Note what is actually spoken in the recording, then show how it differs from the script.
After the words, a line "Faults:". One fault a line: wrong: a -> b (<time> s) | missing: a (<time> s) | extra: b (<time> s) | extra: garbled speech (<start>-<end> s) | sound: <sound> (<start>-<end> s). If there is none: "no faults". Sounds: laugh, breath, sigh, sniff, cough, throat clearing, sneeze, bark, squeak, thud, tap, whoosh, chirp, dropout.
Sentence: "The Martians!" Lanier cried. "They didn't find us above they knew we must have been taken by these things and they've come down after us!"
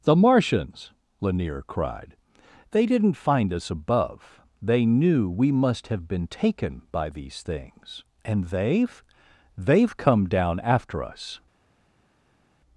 "The Martians!" Lanier cried. "They didn't find us above they knew we must have been taken by these things and they've they've come down after us!"
Faults:
extra: they've (9.6 s)